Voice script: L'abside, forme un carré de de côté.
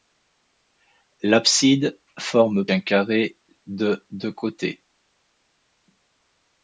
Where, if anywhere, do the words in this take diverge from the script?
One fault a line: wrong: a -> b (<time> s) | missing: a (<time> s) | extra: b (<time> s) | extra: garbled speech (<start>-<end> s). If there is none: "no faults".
no faults